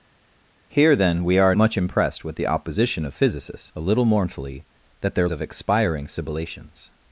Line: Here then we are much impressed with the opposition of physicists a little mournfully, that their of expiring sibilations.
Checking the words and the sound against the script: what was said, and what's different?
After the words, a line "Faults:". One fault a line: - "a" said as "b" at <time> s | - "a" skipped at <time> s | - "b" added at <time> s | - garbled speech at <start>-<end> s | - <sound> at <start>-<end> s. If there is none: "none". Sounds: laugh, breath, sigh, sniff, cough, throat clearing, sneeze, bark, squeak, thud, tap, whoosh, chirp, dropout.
Here then we are much impressed with the opposition of physicists a little mournfully, that their of expiring sibilations.
Faults:
none